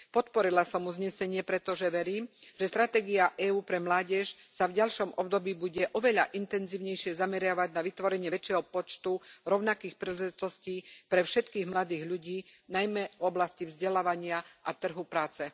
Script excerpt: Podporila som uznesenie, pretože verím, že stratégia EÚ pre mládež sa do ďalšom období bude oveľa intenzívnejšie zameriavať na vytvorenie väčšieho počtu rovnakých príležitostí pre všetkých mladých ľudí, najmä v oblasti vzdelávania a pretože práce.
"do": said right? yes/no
no